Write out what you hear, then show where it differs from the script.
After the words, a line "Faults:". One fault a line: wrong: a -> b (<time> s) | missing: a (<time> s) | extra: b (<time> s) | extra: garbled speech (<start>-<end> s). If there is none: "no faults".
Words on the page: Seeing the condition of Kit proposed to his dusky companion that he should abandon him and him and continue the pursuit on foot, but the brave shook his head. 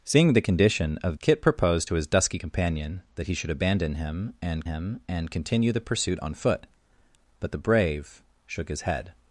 Seeing the condition of Kit proposed to his dusky companion that he should abandon him and him and continue the pursuit on foot, but the brave shook his head.
Faults:
no faults